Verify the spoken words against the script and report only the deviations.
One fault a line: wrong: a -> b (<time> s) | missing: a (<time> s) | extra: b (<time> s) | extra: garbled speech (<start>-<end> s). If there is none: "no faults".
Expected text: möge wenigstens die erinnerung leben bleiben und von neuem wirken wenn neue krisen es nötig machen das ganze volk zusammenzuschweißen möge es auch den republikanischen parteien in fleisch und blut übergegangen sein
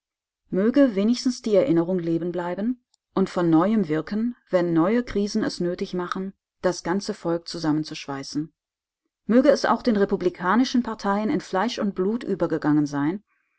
no faults